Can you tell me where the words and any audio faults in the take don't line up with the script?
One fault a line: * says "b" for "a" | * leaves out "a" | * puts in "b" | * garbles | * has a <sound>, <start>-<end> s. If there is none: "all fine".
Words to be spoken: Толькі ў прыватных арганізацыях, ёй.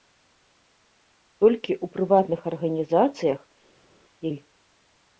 all fine